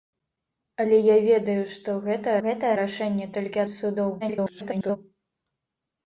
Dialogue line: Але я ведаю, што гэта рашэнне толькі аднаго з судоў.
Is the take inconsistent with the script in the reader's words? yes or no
yes